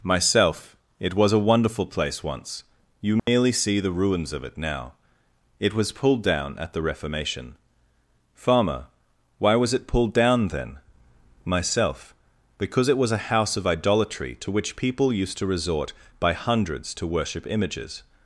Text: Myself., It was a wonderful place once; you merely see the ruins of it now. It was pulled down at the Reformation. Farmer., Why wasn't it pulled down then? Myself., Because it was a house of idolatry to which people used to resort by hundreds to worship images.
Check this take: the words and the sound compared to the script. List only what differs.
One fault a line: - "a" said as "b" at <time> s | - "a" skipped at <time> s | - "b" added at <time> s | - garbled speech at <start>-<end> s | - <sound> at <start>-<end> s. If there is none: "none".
- dropout at 3.2-3.3 s
- "wasn't" said as "was" at 9.6 s